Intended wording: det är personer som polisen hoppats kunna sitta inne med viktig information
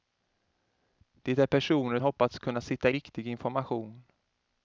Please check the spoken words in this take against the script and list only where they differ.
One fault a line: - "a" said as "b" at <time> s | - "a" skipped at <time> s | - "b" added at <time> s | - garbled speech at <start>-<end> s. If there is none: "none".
- "som polisen" skipped at 2.0 s
- "inne med" skipped at 2.9 s